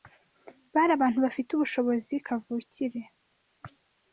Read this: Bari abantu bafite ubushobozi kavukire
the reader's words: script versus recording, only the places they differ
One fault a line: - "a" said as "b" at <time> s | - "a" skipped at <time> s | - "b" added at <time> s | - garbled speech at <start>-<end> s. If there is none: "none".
none